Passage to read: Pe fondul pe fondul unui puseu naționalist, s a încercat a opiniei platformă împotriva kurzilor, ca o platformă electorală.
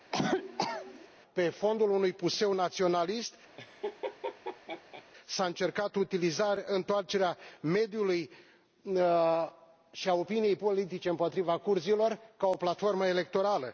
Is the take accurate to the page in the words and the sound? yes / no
no